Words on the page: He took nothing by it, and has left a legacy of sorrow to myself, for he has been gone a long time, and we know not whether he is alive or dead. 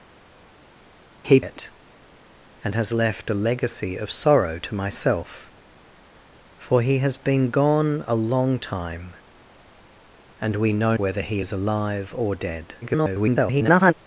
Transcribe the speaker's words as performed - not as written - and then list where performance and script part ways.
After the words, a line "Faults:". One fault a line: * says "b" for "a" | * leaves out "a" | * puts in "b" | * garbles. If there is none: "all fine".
He it, and has left a legacy of sorrow to myself, for he has been gone a long time, and we know whether he is alive or dead. [garbled]
Faults:
* leaves out "took nothing by"
* leaves out "not"
* garbles